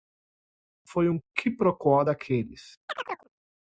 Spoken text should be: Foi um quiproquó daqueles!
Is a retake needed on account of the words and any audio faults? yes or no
yes